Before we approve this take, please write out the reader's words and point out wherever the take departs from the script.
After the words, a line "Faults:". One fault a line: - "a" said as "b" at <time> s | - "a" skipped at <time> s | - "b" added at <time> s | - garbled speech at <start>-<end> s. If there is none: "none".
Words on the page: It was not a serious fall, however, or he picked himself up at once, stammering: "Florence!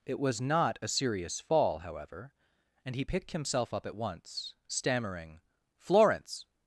It was not a serious fall, however, and he picked himself up at once, stammering: "Florence!
Faults:
- "or" said as "and" at 2.9 s